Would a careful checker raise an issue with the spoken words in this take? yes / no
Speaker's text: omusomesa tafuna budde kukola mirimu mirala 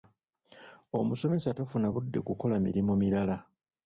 no